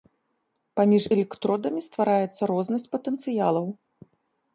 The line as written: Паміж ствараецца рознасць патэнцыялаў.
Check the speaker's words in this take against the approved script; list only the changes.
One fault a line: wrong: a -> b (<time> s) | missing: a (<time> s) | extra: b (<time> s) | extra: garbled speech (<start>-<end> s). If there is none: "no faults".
extra: электродамі (1.1 s)